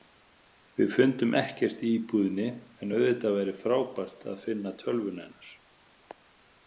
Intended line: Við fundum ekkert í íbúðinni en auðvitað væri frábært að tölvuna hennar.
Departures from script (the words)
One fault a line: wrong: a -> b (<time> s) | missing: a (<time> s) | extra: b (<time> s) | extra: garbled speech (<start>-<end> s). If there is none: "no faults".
extra: finna (4.5 s)